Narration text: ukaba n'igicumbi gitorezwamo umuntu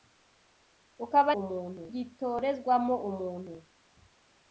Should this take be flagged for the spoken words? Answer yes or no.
yes